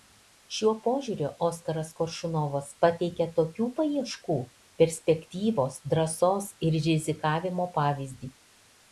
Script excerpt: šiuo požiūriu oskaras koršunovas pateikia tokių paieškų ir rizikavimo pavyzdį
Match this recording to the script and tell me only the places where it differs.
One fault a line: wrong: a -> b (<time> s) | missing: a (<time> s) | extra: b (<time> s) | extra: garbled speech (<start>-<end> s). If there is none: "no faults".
extra: perspektyvos drąsos (4.8 s)